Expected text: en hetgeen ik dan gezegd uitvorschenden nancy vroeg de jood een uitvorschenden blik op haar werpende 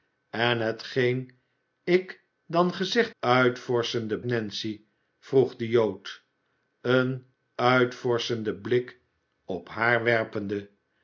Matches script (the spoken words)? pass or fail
pass